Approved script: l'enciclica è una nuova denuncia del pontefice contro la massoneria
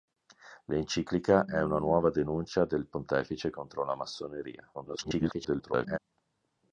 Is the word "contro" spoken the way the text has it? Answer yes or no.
yes